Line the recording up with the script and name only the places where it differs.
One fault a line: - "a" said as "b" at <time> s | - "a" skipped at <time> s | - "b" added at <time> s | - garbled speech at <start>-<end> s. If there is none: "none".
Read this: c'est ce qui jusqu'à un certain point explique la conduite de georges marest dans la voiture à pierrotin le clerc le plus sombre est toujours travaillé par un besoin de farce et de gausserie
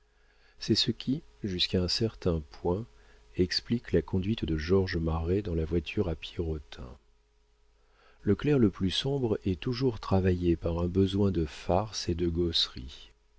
none